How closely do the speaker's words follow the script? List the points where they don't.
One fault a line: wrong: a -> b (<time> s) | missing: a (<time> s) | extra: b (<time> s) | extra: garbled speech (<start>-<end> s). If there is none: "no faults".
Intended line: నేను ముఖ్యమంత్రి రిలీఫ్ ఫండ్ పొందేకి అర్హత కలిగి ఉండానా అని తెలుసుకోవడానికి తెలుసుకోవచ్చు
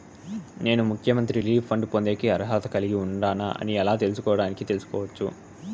extra: ఎలా (3.8 s)